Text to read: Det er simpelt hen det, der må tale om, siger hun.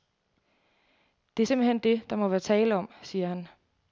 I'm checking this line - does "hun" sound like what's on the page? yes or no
no